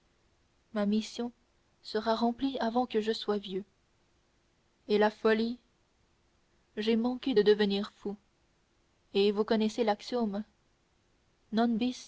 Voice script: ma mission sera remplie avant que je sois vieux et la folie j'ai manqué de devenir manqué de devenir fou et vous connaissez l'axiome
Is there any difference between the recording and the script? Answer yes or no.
yes